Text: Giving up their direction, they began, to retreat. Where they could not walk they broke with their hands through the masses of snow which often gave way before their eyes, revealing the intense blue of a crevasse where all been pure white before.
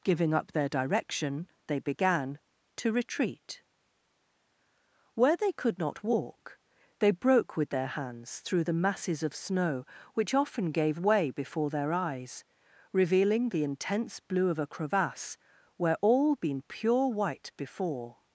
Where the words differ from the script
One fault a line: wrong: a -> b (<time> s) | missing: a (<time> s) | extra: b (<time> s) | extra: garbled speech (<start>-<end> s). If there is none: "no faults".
no faults